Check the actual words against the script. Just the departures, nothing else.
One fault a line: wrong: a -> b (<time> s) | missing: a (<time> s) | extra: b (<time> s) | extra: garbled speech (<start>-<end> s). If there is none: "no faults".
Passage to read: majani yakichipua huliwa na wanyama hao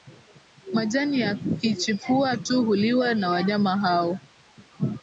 extra: tu (2.4 s)